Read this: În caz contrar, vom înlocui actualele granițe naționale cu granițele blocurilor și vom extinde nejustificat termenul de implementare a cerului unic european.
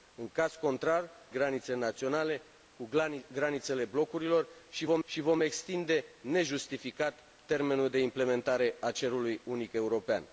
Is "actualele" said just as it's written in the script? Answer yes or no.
no